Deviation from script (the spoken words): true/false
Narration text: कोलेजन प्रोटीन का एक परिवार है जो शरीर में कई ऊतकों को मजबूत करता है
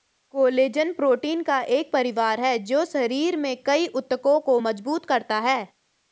false